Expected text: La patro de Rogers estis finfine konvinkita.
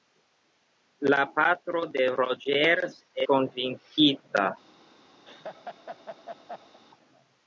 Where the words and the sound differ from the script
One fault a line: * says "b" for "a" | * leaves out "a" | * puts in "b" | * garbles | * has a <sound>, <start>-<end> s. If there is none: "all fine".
* leaves out "estis finfine"
* has a laugh, 5.2-6.8 s